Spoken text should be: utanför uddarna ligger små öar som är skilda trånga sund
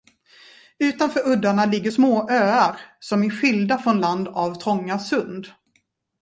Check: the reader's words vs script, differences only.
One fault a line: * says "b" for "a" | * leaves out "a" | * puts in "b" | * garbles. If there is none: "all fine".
* puts in "från land av"